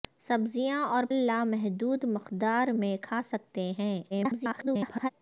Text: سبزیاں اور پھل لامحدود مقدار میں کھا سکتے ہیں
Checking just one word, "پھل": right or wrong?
wrong